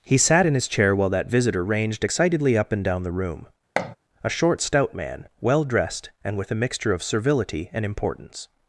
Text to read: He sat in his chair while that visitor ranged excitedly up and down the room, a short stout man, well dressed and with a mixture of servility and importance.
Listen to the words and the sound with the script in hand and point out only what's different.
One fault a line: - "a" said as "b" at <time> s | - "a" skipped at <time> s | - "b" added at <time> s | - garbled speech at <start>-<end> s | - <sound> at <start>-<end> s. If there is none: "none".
- thud at 3.8-4.0 s